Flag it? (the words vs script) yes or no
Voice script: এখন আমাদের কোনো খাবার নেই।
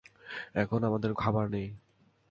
yes